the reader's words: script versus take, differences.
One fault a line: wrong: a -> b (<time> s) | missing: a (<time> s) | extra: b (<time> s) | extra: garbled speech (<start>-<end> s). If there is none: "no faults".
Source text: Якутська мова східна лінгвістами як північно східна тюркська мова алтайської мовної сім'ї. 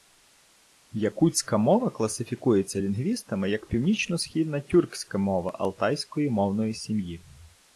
wrong: східна -> класифікується (1.9 s)